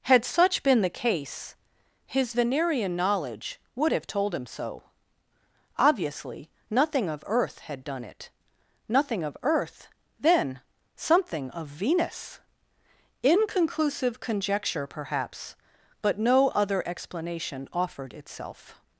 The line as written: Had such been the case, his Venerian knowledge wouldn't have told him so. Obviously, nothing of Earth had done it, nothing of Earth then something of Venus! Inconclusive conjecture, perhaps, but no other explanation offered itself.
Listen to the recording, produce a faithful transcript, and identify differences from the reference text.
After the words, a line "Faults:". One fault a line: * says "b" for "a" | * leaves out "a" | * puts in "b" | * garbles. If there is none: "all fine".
Had such been the case, his Venerian knowledge would have told him so. Obviously, nothing of Earth had done it, nothing of Earth then something of Venus! Inconclusive conjecture, perhaps, but no other explanation offered itself.
Faults:
* says "would" for "wouldn't"